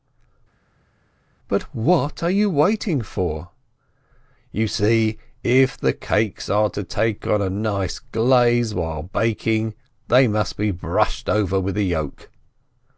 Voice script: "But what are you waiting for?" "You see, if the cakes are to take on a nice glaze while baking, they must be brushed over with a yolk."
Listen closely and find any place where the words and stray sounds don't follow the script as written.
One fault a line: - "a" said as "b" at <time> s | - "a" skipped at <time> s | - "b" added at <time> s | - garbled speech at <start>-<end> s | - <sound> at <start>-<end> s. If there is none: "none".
none